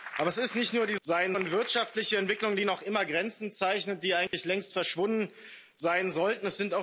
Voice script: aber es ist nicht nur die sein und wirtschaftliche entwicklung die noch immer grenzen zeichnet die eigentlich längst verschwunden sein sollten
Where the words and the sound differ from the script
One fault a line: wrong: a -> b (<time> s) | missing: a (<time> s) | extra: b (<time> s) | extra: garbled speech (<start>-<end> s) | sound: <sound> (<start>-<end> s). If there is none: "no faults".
sound: dropout (4.3-4.3 s)